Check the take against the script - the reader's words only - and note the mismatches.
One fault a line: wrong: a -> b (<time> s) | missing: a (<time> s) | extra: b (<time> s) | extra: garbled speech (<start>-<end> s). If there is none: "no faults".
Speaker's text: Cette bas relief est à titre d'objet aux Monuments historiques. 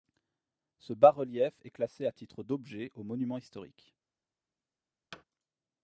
wrong: Cette -> Ce (0.8 s)
extra: classé (1.7 s)